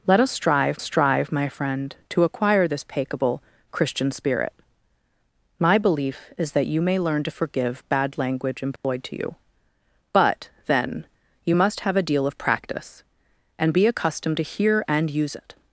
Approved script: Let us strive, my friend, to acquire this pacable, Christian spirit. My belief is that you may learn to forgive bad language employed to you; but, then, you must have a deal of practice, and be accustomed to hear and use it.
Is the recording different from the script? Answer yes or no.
yes